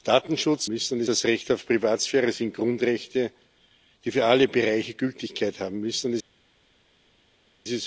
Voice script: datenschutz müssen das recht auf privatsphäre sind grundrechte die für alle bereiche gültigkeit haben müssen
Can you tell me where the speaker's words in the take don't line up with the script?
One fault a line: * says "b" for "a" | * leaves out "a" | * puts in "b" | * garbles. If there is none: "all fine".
all fine